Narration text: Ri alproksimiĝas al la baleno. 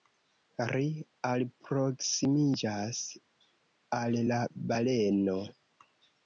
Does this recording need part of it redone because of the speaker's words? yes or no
no